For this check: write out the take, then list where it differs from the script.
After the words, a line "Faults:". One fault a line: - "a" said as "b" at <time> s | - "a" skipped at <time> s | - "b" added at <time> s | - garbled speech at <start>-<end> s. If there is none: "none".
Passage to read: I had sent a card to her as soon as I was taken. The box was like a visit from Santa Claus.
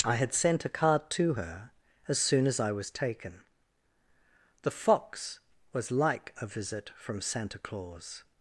I had sent a card to her as soon as I was taken. The fox was like a visit from Santa Claus.
Faults:
- "box" said as "fox" at 4.7 s